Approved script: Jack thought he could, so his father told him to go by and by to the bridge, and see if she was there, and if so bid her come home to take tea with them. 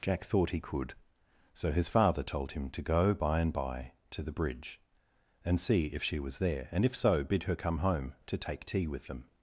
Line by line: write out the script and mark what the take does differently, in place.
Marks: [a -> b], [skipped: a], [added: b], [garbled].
Jack thought he could, so his father told him to go by and by to the bridge, and see if she was there, and if so bid her come home to take tea with them.